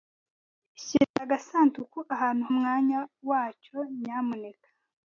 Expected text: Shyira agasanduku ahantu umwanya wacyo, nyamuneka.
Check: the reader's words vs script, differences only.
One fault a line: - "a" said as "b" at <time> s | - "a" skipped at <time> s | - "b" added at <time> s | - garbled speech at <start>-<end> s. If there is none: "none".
none